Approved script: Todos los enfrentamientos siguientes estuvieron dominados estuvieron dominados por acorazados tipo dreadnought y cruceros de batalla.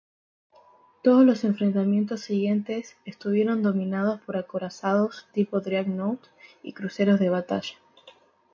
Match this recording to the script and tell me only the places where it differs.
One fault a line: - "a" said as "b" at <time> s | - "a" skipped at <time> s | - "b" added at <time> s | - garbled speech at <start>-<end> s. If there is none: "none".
- "estuvieron dominados" skipped at 4.2 s